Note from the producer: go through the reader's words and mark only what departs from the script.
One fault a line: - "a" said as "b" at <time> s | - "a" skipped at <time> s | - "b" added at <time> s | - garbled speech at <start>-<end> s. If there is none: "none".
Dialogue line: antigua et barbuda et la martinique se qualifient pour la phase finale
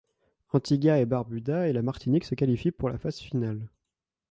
none